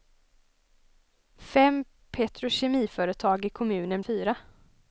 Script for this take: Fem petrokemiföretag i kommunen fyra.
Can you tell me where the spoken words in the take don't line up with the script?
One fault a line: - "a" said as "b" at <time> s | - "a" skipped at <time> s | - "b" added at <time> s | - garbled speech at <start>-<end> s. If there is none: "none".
none